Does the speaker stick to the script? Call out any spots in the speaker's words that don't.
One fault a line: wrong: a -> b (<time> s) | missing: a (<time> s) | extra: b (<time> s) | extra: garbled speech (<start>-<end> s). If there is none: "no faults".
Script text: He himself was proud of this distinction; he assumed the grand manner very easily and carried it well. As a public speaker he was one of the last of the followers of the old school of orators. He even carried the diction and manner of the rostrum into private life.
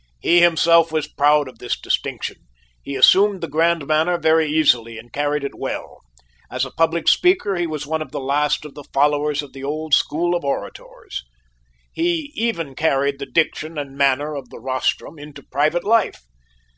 no faults